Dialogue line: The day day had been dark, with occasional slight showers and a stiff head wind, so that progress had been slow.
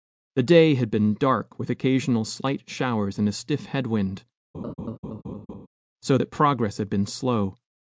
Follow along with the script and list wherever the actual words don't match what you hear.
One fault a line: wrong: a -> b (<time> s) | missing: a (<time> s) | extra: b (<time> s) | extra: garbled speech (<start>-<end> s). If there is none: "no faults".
missing: day (0.7 s)